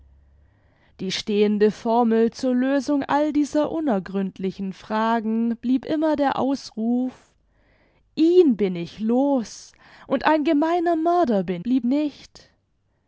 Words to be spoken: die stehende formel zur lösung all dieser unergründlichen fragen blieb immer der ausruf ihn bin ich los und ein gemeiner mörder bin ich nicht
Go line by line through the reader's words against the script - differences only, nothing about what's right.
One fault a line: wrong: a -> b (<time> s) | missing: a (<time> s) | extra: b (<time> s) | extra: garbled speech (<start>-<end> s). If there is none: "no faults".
wrong: ich -> blieb (11.6 s)